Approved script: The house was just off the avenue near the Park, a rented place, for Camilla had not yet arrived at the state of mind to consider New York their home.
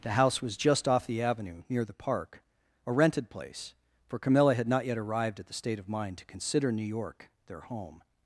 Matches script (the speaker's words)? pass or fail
pass